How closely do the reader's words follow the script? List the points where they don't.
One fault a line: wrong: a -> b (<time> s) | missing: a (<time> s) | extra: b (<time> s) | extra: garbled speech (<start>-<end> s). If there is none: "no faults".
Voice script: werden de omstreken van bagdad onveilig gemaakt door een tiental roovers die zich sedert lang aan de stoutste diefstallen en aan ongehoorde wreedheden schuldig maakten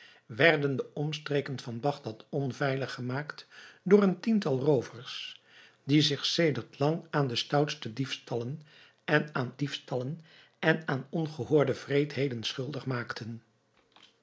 extra: diefstallen en aan (9.6 s)